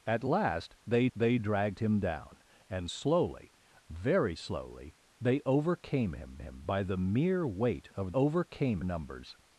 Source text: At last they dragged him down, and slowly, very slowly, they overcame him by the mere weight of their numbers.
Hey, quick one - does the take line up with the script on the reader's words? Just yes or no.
no